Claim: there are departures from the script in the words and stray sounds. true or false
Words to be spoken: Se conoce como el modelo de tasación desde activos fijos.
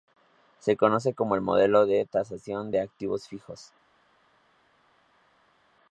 true